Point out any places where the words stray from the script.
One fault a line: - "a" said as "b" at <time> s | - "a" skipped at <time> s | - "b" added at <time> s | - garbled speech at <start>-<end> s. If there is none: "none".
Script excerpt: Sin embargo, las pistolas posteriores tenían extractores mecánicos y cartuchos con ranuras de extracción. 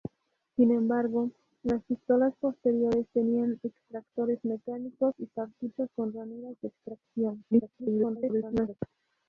- garbled speech at 7.5-8.8 s